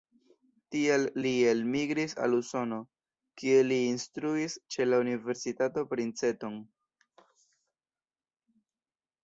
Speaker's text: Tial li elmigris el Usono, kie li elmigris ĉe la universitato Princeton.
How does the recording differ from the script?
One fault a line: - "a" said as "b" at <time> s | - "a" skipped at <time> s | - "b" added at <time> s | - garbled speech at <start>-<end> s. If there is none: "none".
- "el" said as "al" at 2.3 s
- "elmigris" said as "instruis" at 3.9 s